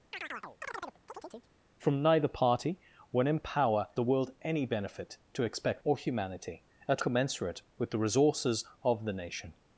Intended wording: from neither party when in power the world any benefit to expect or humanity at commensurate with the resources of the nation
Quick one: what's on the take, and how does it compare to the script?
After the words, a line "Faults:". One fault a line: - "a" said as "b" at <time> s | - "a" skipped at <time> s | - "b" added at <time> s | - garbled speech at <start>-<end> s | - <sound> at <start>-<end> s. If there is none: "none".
from neither party when in power the world any benefit to expect or humanity at commensurate with the resources of the nation
Faults:
- chirp at 0.1-1.5 s